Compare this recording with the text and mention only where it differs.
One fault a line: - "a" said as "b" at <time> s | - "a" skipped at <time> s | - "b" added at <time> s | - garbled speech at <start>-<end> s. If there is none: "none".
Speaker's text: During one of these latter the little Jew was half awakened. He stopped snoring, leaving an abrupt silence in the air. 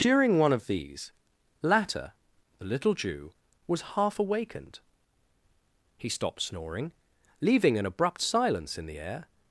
none